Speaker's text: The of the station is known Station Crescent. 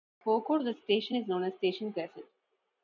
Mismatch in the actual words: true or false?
true